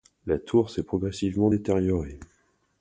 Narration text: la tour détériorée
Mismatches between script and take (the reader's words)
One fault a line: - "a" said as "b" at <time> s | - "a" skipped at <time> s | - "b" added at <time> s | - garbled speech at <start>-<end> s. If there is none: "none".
- "s'est progressivement" added at 0.7 s